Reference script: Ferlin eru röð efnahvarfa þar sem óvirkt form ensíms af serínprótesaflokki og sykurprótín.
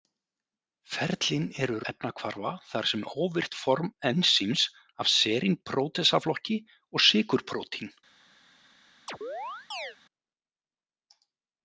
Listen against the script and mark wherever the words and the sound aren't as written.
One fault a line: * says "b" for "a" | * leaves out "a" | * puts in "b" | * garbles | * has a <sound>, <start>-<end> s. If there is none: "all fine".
* leaves out "röð"
* has a chirp, 9.1-10.0 s